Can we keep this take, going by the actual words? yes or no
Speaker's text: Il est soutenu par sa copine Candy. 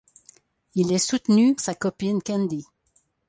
no